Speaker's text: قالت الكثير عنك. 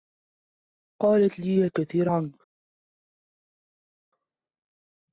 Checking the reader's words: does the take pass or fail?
fail